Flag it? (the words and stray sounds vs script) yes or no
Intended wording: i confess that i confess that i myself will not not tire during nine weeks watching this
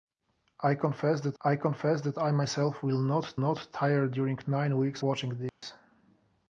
yes